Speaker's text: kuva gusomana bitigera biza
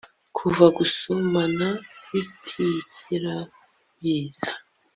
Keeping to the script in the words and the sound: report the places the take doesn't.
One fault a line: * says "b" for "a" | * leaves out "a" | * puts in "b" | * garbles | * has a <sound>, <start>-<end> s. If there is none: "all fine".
all fine